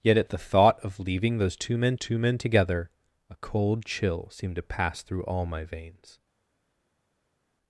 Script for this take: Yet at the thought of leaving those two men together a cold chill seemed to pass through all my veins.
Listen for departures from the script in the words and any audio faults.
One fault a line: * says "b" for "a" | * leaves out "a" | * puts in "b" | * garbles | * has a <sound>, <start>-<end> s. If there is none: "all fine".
* puts in "two men"